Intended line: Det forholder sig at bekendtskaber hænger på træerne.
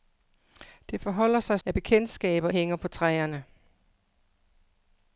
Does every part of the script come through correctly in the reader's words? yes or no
yes